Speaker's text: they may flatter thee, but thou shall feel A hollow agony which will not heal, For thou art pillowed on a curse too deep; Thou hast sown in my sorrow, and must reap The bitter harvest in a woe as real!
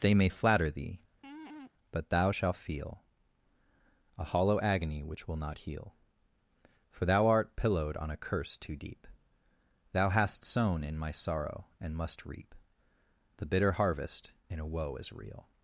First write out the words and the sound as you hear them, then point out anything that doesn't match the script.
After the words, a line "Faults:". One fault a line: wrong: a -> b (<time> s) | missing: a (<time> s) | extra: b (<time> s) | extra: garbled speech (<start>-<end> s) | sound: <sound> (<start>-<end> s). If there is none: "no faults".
they may flatter thee, but thou shalt feel A hollow agony which will not heal, For thou art pillowed on a curse too deep; Thou hast sown in my sorrow, and must reap The bitter harvest in a woe as real!
Faults:
sound: laugh (1.2-1.7 s)
wrong: shall -> shalt (2.3 s)